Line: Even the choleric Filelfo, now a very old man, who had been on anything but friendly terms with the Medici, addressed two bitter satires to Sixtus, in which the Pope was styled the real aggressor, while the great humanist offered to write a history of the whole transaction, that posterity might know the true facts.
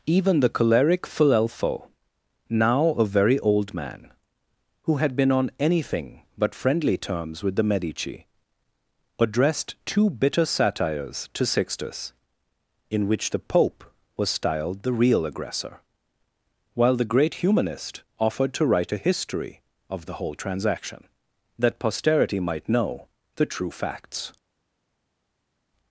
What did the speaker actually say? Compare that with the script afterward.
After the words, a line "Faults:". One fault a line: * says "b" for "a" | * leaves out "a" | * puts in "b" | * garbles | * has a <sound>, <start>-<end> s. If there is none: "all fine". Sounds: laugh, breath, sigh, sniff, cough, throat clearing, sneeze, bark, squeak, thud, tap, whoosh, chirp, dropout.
Even the choleric Filelfo, now a very old man, who had been on anything but friendly terms with the Medici, addressed two bitter satires to Sixtus, in which the Pope was styled the real aggressor, while the great humanist offered to write a history of the whole transaction, that posterity might know the true facts.
Faults:
all fine